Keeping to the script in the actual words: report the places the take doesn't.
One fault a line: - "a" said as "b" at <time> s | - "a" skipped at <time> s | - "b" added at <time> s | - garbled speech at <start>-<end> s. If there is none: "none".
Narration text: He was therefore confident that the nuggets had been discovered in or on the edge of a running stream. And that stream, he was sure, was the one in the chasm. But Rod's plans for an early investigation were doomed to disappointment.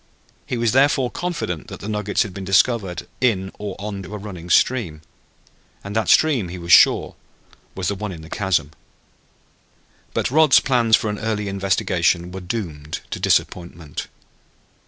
- "the edge" skipped at 4.0 s